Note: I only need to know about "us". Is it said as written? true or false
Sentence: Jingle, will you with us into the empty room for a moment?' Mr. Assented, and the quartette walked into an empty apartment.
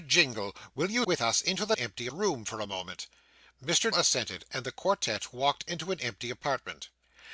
true